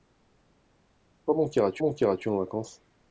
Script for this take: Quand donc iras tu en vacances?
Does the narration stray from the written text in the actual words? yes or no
yes